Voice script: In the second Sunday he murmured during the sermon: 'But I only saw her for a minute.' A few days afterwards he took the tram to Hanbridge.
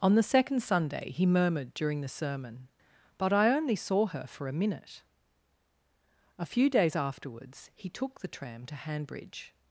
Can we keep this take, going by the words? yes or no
no